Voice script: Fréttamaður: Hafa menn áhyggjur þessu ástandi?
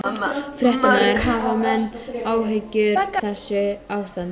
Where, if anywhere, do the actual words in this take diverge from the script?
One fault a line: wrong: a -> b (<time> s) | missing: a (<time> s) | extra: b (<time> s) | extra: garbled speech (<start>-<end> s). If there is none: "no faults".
no faults